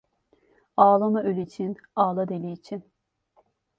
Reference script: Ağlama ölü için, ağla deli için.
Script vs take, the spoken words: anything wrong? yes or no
no